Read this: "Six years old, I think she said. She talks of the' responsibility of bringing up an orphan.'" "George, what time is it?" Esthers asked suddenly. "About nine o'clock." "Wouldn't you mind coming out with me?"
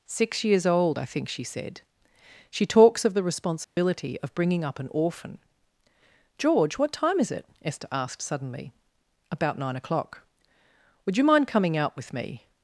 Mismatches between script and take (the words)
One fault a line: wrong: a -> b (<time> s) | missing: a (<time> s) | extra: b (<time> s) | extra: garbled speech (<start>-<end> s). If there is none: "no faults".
wrong: Esthers -> Esther (7.6 s)
wrong: Wouldn't -> Would (11.1 s)